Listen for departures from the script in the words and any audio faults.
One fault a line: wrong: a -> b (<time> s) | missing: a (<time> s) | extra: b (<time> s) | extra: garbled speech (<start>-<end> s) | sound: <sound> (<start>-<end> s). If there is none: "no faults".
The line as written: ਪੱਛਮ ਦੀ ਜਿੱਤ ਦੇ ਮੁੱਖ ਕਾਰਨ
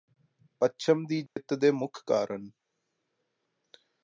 sound: dropout (1.3-1.4 s)